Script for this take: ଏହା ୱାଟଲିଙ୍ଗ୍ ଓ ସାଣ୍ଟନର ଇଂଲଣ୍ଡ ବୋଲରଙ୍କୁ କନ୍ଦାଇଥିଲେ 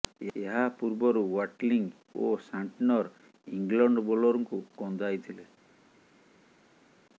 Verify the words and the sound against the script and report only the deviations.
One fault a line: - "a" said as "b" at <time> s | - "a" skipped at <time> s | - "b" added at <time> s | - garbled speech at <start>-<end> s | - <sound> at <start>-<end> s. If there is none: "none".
- "ପୂର୍ବରୁ" added at 0.8 s